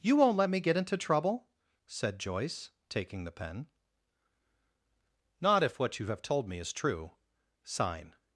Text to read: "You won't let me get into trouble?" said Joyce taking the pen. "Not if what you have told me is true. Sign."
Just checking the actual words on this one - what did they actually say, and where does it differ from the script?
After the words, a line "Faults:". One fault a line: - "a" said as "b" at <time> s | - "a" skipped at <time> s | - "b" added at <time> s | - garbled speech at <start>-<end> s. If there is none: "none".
"You won't let me get into trouble?" said Joyce taking the pen. "Not if what you have told me is true. Sign."
Faults:
none